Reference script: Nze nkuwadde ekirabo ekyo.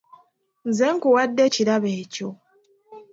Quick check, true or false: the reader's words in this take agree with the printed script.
true